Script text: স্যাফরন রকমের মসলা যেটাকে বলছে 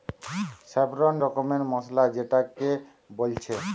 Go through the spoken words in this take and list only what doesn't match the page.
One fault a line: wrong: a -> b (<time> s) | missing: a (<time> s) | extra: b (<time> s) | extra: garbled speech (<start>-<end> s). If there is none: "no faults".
no faults